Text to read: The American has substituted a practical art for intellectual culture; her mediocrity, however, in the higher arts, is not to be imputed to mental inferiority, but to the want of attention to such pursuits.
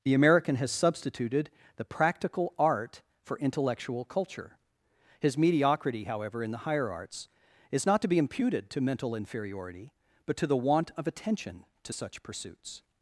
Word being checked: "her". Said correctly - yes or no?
no